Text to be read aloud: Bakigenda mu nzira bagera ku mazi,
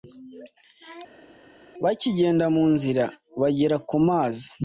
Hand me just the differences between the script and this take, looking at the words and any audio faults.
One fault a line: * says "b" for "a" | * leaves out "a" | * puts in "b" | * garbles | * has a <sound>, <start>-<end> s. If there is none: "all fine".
all fine